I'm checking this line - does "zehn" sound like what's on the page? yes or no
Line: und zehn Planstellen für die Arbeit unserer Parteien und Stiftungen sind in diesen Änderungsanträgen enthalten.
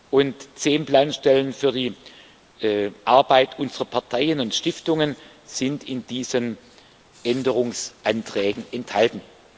yes